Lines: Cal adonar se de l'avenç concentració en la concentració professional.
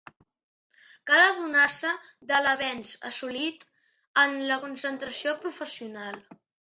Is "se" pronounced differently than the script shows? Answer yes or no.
no